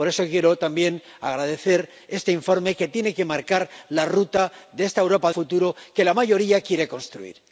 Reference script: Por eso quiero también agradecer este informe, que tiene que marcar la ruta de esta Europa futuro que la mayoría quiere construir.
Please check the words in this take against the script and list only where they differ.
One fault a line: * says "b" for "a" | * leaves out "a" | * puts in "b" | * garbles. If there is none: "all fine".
all fine